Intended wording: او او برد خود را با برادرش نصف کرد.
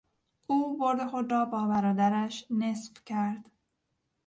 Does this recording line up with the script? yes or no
no